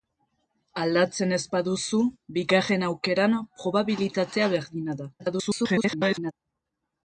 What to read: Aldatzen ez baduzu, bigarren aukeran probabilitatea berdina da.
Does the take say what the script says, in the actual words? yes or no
no